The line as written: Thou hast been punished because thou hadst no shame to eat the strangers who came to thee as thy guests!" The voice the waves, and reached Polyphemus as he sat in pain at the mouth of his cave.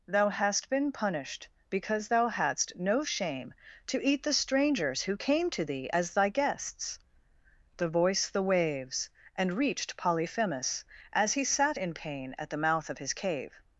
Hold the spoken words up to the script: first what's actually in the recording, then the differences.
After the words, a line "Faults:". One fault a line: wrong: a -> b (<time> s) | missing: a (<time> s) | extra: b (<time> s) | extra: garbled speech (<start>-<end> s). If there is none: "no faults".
Thou hast been punished because thou hadst no shame to eat the strangers who came to thee as thy guests!" The voice the waves, and reached Polyphemus as he sat in pain at the mouth of his cave.
Faults:
no faults